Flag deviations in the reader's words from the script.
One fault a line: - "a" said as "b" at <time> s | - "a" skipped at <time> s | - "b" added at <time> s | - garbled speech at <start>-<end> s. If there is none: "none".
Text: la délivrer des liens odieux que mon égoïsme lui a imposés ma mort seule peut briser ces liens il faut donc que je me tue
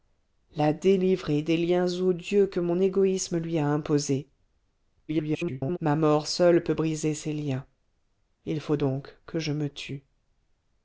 - garbled speech at 5.1-5.8 s